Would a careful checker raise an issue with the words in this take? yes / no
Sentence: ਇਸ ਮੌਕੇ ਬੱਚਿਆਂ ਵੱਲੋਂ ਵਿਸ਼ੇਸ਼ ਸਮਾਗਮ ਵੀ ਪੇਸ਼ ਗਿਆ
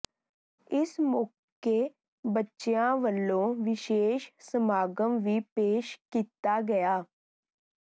yes